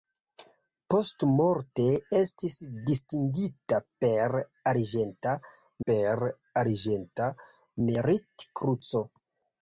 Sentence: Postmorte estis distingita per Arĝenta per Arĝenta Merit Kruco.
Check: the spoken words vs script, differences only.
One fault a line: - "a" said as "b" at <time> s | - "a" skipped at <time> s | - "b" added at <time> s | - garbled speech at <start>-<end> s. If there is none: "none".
none